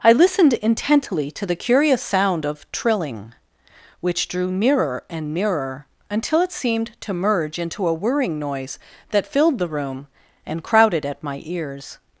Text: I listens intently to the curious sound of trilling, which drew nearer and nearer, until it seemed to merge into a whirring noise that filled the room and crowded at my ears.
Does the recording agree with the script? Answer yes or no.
no